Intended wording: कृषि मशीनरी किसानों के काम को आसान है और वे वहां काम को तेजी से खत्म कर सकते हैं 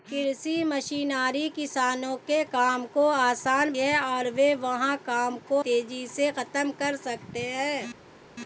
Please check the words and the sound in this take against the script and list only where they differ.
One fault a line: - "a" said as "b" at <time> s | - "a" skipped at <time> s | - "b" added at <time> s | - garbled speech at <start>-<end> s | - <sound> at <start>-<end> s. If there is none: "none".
none